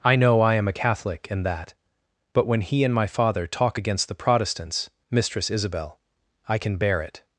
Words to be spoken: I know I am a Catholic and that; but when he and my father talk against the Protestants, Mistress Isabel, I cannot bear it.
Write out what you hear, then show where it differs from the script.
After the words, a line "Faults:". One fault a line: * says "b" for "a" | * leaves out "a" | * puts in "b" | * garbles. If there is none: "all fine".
I know I am a Catholic and that; but when he and my father talk against the Protestants, Mistress Isabel, I can bear it.
Faults:
* says "can" for "cannot"